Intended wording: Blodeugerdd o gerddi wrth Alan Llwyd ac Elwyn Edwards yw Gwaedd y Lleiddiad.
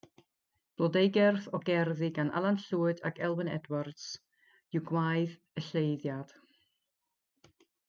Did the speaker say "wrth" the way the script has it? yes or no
no